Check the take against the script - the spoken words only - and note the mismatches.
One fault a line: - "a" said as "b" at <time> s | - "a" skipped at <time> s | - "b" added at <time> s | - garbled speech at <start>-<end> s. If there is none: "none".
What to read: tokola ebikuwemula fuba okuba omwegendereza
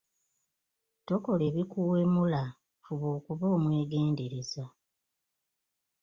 none